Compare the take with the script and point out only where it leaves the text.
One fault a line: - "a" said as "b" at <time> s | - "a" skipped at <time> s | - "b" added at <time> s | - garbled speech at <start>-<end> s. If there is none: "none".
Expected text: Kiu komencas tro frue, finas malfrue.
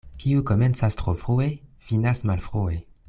none